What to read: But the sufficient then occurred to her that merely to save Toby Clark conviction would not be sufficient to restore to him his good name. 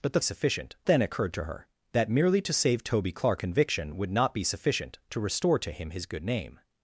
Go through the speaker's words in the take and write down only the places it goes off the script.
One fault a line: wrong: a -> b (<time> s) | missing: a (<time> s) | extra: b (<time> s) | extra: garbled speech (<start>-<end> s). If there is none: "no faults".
no faults